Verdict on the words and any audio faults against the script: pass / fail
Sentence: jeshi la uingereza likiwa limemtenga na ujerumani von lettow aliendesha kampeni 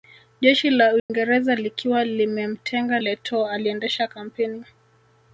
fail